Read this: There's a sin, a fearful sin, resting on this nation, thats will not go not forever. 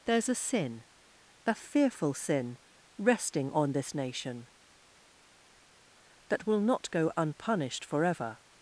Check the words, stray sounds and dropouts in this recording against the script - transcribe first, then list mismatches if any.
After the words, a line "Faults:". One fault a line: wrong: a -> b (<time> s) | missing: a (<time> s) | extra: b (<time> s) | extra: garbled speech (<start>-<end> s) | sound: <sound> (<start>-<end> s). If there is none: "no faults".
There's a sin, a fearful sin, resting on this nation, that will not go unpunished forever.
Faults:
wrong: thats -> that (6.3 s)
wrong: not -> unpunished (7.2 s)